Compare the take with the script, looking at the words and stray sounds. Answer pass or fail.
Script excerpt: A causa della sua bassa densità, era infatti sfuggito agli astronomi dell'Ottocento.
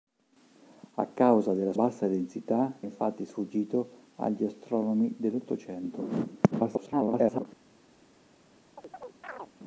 fail